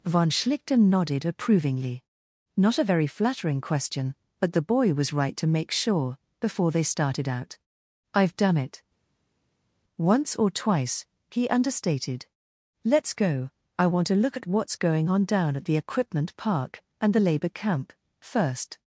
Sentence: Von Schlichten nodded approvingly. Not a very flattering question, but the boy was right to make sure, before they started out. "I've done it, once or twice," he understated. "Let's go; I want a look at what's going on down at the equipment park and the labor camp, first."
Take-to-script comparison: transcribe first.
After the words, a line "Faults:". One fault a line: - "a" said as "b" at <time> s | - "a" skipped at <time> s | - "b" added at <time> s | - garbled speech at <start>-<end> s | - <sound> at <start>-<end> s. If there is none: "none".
Von Schlichten nodded approvingly. Not a very flattering question, but the boy was right to make sure, before they started out. "I've done it, once or twice," he understated. "Let's go; I want to look at what's going on down at the equipment park and the labor camp, first."
Faults:
- "a" said as "to" at 14.1 s